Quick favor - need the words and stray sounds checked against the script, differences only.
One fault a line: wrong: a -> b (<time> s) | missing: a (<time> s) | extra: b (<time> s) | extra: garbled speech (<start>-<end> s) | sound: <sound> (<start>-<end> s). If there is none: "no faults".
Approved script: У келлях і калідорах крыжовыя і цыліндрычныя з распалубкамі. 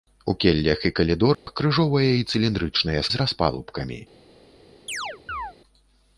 sound: dropout (1.3-1.5 s)
sound: chirp (4.9-5.5 s)